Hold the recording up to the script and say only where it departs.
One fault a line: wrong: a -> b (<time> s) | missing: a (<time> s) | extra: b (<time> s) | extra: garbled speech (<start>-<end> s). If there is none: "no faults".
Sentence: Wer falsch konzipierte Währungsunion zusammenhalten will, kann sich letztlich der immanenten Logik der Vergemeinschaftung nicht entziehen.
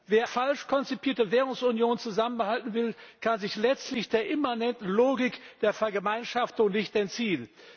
no faults